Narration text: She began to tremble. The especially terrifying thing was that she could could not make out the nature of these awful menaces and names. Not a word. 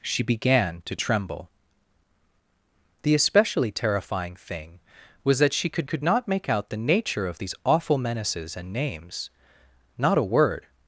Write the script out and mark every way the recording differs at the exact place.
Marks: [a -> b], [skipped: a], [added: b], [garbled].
She began to tremble. The especially terrifying thing was that she could could not make out the nature of these awful menaces and names. Not a word.